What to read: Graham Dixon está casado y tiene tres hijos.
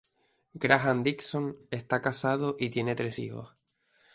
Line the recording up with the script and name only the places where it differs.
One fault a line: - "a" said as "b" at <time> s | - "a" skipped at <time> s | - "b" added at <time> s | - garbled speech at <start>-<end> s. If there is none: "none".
none